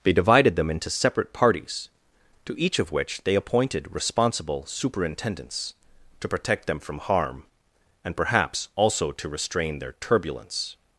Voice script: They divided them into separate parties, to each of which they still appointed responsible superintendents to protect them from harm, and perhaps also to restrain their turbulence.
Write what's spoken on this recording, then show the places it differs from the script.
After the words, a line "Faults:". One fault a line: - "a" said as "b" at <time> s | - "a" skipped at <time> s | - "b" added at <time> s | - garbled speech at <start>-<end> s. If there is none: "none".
They divided them into separate parties, to each of which they appointed responsible superintendents to protect them from harm, and perhaps also to restrain their turbulence.
Faults:
- "still" skipped at 3.4 s